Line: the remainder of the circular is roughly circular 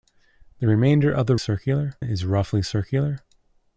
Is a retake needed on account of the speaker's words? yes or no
no